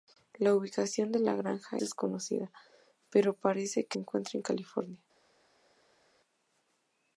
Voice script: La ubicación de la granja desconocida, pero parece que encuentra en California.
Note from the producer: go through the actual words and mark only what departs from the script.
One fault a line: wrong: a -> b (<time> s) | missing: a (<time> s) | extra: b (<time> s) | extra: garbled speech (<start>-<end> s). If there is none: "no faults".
no faults